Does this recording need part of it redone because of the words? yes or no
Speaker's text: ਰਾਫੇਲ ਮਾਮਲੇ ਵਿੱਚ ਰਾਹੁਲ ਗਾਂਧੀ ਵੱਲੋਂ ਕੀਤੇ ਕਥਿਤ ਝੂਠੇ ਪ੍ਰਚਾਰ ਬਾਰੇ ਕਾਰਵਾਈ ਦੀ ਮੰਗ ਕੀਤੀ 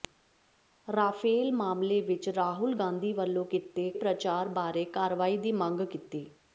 yes